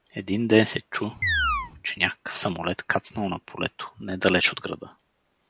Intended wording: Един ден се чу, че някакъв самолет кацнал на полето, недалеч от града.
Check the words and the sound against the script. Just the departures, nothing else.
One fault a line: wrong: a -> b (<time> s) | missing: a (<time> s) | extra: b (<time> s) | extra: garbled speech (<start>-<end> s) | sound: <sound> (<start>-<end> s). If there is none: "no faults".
sound: chirp (1.2-1.7 s)